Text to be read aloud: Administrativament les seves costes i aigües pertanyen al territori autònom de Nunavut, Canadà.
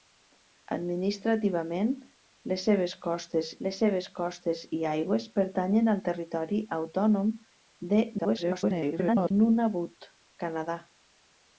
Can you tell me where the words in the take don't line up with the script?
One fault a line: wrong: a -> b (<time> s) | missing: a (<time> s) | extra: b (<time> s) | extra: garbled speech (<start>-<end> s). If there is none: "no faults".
extra: les seves costes (3.7 s)
extra: garbled speech (8.2-9.3 s)